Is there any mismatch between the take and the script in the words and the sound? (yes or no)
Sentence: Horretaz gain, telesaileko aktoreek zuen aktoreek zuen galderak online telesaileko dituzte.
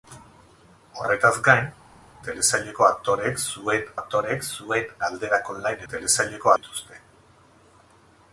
no